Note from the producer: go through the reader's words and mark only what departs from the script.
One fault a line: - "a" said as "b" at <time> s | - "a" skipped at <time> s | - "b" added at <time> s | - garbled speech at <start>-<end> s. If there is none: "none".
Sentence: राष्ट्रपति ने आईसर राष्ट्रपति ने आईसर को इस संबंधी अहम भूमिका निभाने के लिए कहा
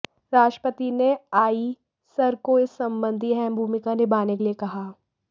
- "राष्ट्रपति ने आईसर" skipped at 2.4 s